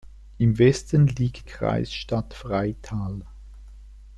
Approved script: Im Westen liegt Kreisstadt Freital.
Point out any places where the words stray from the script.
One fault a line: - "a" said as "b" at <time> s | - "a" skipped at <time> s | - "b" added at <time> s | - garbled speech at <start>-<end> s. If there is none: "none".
none